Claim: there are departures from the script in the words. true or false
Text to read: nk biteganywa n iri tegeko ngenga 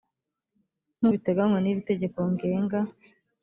false